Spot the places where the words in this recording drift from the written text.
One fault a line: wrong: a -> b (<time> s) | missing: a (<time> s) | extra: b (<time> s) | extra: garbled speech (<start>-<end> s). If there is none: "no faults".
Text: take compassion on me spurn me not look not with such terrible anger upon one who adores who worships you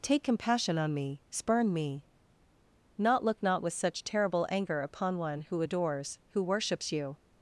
no faults